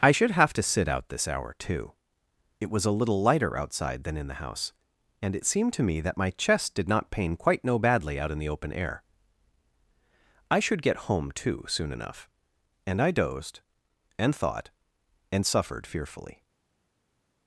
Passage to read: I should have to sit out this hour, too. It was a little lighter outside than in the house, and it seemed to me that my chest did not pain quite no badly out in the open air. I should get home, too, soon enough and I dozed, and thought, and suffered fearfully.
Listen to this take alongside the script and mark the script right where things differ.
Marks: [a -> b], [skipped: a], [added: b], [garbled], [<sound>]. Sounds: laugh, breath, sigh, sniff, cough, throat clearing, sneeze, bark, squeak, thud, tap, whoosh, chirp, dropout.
I should have to sit out this hour, too. It was a little lighter outside than in the house, and it seemed to me that my chest did not pain quite no badly out in the open air. I should get home, too, soon enough and I dozed, and thought, and suffered fearfully.